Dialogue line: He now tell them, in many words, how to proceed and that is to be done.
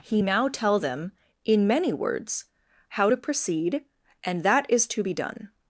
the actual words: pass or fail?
pass